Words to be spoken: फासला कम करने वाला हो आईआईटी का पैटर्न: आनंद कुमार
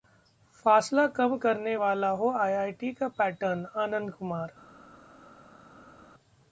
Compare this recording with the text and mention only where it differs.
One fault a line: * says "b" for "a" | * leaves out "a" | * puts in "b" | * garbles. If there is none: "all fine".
all fine